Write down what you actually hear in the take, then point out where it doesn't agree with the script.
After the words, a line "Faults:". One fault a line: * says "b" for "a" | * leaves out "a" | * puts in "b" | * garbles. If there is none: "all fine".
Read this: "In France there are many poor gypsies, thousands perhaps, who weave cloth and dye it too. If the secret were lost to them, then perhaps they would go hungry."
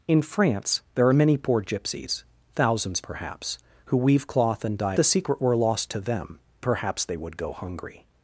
"In France there are many poor gypsies, thousands perhaps, who weave cloth and dye the secret were lost to them, perhaps they would go hungry."
Faults:
* leaves out "it too If"
* leaves out "then"